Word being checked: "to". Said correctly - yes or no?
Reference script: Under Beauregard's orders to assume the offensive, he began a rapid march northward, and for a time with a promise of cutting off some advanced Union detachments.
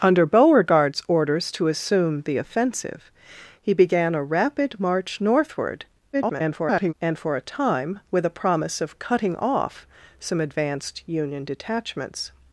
yes